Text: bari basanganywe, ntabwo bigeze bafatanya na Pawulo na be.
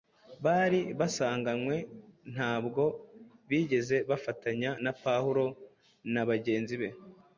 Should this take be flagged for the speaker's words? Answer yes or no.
yes